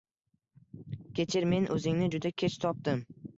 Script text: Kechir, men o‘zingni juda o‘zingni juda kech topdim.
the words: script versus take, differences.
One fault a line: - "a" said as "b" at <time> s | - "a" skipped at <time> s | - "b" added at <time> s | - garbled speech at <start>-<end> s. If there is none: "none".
- "o‘zingni juda" skipped at 2.3 s